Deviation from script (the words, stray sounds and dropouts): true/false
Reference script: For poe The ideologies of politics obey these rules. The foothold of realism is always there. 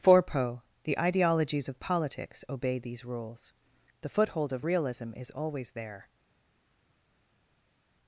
false